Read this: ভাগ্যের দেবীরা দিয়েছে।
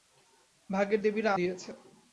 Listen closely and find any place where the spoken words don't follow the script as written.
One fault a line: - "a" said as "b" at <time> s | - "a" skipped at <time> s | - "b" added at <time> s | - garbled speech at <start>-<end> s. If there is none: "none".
none